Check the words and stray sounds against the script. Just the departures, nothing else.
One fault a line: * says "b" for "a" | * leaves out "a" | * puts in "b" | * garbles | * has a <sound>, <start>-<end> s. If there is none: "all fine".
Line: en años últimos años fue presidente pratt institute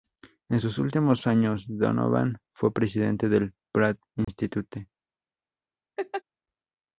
* says "sus" for "años"
* puts in "donovan"
* puts in "del"
* has a dropout, 4.2-4.3 s
* has a laugh, 6.0-6.2 s